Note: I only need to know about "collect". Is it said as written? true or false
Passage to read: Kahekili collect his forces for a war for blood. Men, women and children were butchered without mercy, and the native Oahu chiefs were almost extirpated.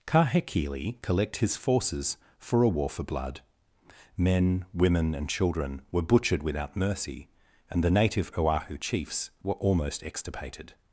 true